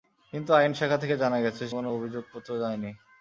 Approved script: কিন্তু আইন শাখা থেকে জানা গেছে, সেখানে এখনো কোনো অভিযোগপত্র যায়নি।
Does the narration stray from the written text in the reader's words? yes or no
yes